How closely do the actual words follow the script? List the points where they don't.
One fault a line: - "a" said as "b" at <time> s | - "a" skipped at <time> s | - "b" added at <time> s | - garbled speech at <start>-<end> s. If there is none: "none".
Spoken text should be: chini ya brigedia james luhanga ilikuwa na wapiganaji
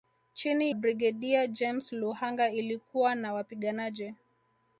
- "ya" skipped at 0.8 s